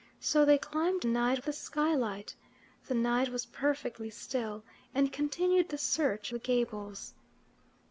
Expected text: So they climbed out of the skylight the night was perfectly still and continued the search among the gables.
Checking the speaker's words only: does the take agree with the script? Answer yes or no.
no